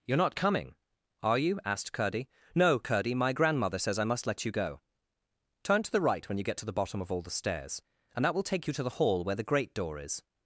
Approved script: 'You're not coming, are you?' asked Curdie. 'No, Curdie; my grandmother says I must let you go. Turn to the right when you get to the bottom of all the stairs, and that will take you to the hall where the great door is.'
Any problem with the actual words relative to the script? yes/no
no